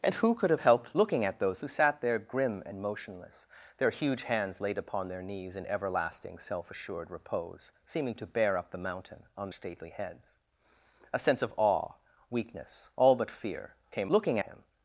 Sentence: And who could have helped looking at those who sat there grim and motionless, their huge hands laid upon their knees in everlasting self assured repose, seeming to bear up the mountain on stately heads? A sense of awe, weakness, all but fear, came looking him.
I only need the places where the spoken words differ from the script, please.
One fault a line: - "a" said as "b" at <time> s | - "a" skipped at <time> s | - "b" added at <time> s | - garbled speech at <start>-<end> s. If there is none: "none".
none